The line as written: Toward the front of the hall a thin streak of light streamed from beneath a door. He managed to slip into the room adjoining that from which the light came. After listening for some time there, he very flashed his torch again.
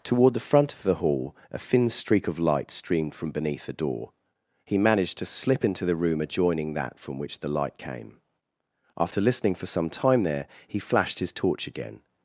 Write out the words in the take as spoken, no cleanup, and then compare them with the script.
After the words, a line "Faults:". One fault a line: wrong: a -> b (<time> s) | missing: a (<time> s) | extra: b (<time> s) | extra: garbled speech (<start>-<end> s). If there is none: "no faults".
Toward the front of the hall a thin streak of light streamed from beneath a door. He managed to slip into the room adjoining that from which the light came. After listening for some time there, he flashed his torch again.
Faults:
missing: very (10.8 s)